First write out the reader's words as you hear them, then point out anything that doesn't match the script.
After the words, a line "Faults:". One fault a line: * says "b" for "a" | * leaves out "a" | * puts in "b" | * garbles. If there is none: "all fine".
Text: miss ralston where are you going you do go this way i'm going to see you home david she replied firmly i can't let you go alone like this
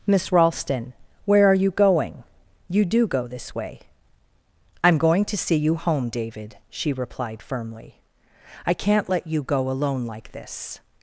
miss ralston where are you going you do go this way i'm going to see you home david she replied firmly i can't let you go alone like this
Faults:
all fine